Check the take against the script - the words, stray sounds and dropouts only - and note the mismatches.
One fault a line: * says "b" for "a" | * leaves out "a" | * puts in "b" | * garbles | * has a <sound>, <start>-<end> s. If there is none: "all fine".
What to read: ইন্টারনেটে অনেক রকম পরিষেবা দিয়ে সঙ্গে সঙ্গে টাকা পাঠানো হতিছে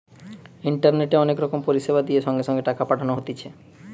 all fine